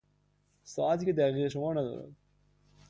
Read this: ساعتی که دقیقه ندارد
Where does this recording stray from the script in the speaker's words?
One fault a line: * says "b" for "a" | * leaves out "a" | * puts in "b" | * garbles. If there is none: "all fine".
* puts in "شمار"